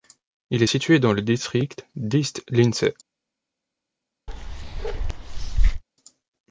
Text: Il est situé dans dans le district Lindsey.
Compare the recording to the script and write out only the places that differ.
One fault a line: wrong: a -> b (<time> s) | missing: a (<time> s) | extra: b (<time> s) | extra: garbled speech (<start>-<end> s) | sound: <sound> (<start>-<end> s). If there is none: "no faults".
missing: dans (1.1 s)
extra: d'East (2.0 s)
sound: bark (4.3-5.8 s)